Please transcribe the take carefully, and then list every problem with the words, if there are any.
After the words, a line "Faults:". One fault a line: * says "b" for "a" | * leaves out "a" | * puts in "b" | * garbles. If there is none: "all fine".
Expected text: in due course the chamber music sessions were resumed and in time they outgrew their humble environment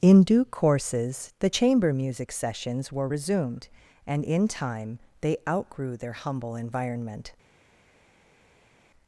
in due courses the chamber music sessions were resumed and in time they outgrew their humble environment
Faults:
* says "courses" for "course"